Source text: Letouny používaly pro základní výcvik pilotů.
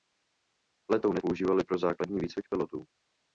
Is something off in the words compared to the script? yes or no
no